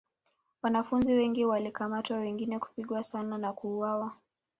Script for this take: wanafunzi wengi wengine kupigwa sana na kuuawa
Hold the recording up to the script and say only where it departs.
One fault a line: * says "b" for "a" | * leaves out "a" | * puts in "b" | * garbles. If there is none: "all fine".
* puts in "walikamatwa"